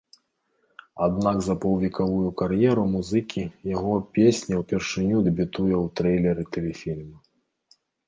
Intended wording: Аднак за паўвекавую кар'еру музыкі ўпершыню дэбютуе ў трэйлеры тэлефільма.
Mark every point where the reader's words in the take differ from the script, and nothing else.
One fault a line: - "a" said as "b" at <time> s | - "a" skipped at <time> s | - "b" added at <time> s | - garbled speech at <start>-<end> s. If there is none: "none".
- "яго песня" added at 3.8 s